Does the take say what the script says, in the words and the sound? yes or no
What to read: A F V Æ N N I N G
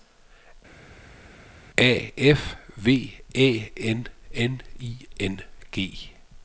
yes